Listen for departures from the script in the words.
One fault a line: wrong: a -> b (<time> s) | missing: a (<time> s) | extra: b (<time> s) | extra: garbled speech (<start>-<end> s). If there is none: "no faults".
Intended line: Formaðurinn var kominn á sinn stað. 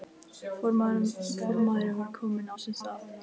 no faults